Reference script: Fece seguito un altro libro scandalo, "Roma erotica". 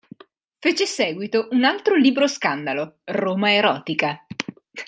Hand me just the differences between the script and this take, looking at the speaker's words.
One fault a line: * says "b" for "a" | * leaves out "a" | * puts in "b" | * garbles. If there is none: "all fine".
all fine